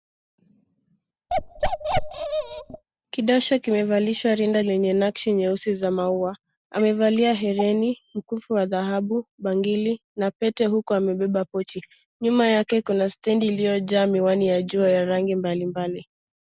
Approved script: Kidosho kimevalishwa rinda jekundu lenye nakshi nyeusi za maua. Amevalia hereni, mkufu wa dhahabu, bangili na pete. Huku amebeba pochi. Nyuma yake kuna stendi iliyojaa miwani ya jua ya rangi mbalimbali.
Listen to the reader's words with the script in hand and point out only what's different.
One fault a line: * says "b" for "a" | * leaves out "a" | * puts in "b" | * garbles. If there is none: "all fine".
* leaves out "jekundu"